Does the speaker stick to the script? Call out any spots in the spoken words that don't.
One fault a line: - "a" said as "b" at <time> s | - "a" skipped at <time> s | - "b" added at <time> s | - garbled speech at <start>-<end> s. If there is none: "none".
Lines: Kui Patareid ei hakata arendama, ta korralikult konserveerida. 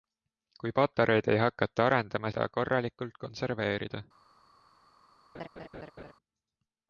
none